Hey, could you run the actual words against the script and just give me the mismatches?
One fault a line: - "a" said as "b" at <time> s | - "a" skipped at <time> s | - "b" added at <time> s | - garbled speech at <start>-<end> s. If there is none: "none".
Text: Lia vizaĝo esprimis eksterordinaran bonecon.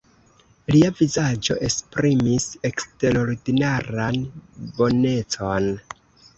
none